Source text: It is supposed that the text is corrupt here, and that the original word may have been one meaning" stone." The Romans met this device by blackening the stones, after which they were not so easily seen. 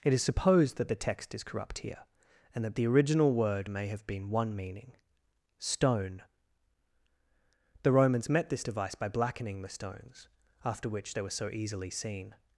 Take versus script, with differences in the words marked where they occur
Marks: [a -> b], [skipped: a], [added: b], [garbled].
It is supposed that the text is corrupt here, and that the original word may have been one meaning" stone." The Romans met this device by blackening the stones, after which they were [skipped: not] so easily seen.